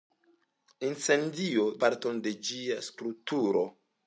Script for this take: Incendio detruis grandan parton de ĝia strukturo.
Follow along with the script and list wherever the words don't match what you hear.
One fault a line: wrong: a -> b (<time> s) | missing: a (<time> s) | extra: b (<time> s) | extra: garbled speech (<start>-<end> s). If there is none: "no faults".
missing: detruis grandan (1.6 s)